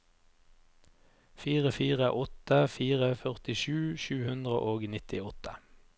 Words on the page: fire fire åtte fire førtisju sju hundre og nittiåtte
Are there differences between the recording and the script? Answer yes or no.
no